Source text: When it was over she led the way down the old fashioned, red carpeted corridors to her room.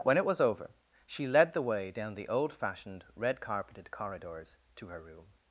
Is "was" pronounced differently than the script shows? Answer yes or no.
no